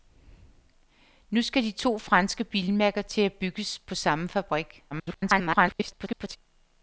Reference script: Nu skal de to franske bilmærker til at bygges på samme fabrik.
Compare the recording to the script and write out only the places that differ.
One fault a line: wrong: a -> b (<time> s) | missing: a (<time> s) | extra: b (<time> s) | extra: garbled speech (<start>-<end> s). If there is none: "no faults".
extra: garbled speech (4.9-6.4 s)